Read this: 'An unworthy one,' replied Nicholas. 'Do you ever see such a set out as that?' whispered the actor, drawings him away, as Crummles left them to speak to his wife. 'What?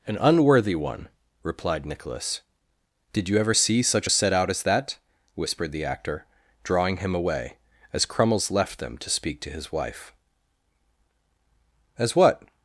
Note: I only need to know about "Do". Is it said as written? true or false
false